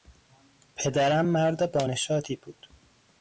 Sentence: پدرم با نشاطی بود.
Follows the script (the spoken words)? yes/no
no